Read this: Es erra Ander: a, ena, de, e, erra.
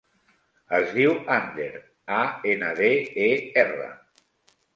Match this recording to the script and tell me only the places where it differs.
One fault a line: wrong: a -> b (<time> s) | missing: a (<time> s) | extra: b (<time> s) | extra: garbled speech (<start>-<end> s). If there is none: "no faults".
wrong: erra -> diu (0.9 s)